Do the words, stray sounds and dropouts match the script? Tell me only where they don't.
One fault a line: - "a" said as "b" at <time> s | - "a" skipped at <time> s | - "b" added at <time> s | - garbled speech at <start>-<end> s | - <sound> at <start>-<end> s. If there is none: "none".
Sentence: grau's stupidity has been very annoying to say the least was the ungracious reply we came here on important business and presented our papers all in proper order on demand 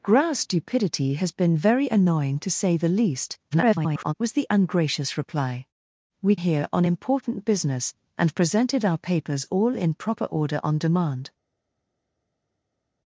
- garbled speech at 3.5-4.1 s
- "came" skipped at 6.4 s